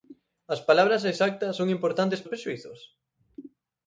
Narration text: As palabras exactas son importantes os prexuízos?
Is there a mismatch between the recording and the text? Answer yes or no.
no